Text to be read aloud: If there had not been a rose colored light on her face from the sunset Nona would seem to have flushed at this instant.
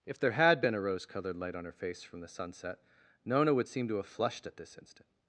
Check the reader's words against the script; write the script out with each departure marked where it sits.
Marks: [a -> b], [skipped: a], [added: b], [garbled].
If there had [skipped: not] been a rose colored light on her face from the sunset Nona would seem to have flushed at this instant.